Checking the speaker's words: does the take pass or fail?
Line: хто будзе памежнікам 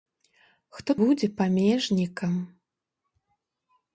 pass